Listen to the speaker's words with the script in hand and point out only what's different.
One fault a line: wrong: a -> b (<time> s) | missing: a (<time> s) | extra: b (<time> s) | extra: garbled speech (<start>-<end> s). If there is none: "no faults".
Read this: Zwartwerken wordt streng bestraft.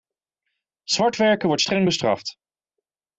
no faults